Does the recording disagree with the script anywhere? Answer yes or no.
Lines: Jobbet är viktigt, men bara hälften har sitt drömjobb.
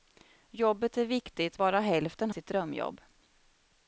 yes